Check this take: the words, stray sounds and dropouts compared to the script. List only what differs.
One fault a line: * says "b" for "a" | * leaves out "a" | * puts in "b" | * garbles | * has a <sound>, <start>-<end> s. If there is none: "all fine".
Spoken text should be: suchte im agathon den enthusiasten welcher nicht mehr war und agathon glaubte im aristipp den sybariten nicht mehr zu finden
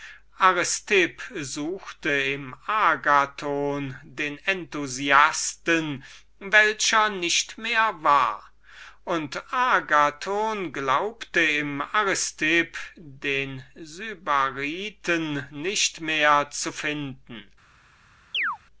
* has a chirp, 18.3-18.6 s